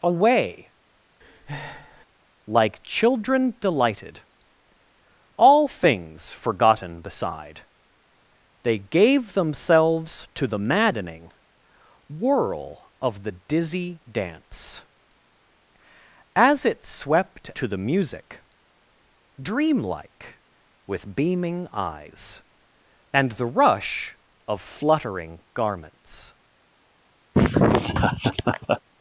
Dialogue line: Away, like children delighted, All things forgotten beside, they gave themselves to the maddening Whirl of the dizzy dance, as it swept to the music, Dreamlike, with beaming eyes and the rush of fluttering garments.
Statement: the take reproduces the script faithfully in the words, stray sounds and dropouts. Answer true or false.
false